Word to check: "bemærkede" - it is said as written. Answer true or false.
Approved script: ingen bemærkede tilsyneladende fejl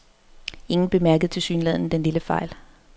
true